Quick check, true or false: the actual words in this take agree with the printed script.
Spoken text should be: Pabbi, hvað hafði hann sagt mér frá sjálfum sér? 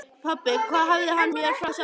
false